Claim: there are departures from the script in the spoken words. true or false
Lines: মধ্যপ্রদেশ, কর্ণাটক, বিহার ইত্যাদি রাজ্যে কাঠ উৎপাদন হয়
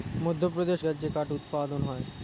true